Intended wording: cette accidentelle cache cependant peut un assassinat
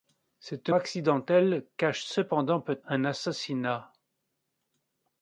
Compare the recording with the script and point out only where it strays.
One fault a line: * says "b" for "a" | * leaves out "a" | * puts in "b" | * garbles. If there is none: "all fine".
all fine